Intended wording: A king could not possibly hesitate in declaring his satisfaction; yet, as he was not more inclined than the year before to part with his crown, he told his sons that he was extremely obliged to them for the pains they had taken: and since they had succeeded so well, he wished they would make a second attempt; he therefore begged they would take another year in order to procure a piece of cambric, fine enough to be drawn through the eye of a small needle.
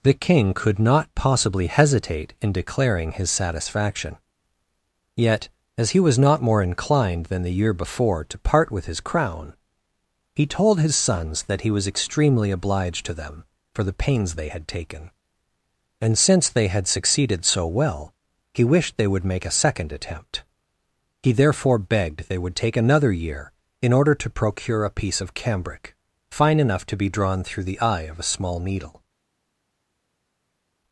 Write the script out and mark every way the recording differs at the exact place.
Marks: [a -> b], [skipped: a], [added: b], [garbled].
[A -> The] king could not possibly hesitate in declaring his satisfaction; yet, as he was not more inclined than the year before to part with his crown, he told his sons that he was extremely obliged to them for the pains they had taken: and since they had succeeded so well, he wished they would make a second attempt; he therefore begged they would take another year in order to procure a piece of cambric, fine enough to be drawn through the eye of a small needle.